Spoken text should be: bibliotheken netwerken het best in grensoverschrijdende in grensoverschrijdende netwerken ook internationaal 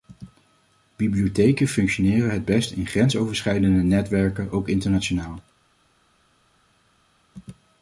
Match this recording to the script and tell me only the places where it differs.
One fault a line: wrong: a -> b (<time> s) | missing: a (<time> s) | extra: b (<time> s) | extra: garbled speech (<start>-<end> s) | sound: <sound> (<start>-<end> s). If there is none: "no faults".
wrong: netwerken -> functioneren (1.7 s)
missing: in grensoverschrijdende (3.8 s)